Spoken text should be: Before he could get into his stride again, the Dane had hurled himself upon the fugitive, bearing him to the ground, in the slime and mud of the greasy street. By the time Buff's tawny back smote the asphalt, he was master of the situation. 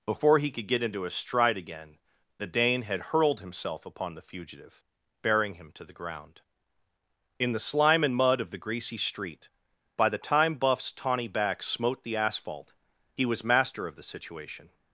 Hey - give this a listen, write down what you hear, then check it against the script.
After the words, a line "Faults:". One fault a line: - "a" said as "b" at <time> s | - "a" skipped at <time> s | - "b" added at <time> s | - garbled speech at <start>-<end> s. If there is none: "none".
Before he could get into his stride again, the Dane had hurled himself upon the fugitive, bearing him to the ground, in the slime and mud of the greasy street. By the time Buff's tawny back smote the asphalt, he was master of the situation.
Faults:
none